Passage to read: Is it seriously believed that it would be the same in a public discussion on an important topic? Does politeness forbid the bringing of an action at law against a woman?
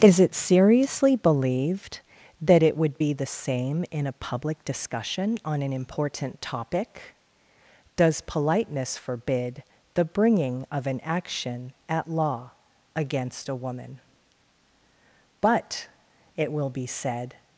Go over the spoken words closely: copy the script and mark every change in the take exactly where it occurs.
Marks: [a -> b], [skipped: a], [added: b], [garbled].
Is it seriously believed that it would be the same in a public discussion on an important topic? Does politeness forbid the bringing of an action at law against a woman? [added: But it will be said]